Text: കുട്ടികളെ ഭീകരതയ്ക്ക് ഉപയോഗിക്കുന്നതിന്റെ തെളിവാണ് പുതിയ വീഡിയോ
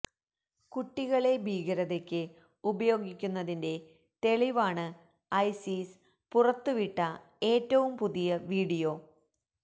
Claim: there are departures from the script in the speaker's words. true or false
true